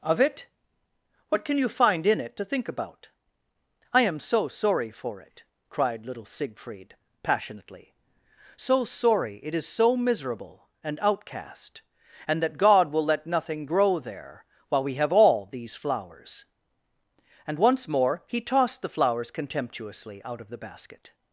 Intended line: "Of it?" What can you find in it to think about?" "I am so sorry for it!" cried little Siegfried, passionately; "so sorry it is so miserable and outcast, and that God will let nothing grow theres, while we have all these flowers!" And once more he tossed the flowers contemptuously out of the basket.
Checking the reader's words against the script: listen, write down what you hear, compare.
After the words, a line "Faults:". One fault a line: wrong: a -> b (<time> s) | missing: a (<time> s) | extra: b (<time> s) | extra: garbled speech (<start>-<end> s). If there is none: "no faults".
"Of it?" What can you find in it to think about?" "I am so sorry for it!" cried little Siegfried, passionately; "so sorry it is so miserable and outcast, and that God will let nothing grow there, while we have all these flowers!" And once more he tossed the flowers contemptuously out of the basket.
Faults:
wrong: theres -> there (14.0 s)